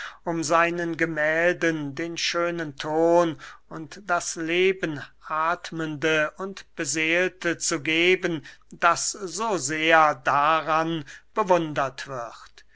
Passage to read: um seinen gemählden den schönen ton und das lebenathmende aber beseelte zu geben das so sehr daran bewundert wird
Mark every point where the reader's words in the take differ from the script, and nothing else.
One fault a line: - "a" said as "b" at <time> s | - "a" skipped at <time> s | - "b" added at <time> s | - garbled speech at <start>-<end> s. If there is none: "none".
- "aber" said as "und" at 6.4 s